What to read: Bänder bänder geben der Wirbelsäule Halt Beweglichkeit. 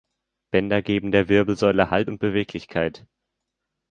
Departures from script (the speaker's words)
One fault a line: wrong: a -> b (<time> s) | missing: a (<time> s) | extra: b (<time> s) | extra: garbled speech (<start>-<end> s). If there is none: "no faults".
missing: bänder (0.8 s)
extra: und (2.1 s)